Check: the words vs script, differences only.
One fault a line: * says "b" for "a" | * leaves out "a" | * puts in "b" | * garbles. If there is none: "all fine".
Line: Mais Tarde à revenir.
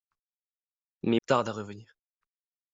all fine